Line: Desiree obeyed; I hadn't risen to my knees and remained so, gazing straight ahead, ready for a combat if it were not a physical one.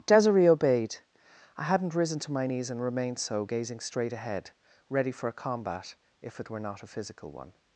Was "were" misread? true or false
false